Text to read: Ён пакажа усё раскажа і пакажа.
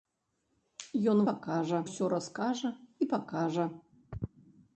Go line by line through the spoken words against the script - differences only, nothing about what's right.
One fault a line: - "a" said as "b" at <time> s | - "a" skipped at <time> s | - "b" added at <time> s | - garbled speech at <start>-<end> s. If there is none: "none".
none